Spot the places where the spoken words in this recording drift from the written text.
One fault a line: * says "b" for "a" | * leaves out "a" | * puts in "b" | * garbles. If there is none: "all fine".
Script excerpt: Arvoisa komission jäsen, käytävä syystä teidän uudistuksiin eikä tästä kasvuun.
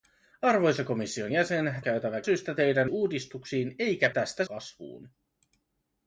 all fine